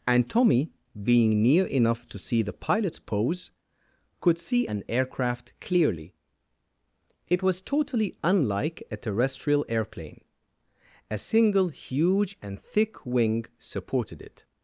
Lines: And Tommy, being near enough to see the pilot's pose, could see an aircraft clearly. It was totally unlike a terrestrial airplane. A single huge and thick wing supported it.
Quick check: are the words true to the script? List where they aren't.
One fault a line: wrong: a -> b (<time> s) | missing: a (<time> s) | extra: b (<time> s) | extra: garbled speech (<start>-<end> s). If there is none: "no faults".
no faults